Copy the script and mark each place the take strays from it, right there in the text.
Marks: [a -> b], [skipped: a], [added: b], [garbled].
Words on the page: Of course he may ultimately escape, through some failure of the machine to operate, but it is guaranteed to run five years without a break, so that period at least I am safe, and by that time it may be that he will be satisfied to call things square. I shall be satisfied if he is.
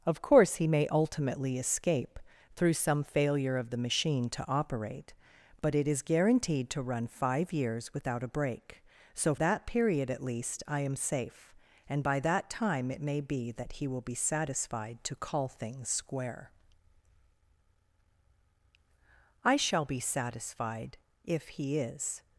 Of course he may ultimately escape, through some failure of the machine to operate, but it is guaranteed to run five years without a break, so that period at least I am safe, and by that time it may be that he will be satisfied to call things square. I shall be satisfied if he is.